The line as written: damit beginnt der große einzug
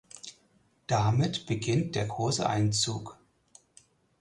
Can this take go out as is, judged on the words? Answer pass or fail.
pass